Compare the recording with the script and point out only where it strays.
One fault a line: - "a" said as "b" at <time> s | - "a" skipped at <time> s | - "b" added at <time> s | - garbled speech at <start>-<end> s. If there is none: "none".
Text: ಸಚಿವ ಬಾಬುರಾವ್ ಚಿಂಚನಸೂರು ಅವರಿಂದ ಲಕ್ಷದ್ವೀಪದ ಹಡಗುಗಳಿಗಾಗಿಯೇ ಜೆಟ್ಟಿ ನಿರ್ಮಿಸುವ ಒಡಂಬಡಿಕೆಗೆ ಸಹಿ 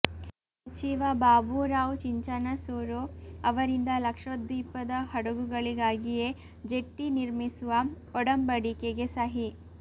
none